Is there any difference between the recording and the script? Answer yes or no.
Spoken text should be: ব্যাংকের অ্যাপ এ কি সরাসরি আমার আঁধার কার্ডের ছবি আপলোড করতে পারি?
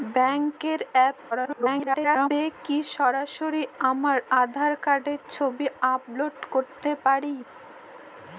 yes